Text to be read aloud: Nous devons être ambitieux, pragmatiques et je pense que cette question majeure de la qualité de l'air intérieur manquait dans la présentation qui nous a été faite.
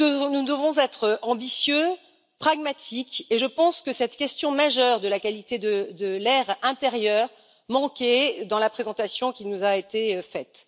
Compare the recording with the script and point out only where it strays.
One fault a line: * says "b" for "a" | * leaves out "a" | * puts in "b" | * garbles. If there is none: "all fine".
all fine